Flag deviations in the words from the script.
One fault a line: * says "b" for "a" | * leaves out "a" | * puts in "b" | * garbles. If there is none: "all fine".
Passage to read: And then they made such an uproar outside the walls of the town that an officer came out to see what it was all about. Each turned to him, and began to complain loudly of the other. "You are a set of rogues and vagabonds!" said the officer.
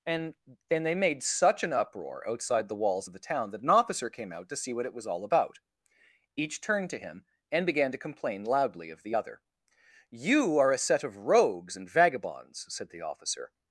all fine